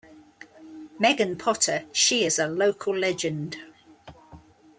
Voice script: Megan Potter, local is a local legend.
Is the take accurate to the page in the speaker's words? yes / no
no